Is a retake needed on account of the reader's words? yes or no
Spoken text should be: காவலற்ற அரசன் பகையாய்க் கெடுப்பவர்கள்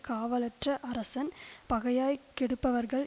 no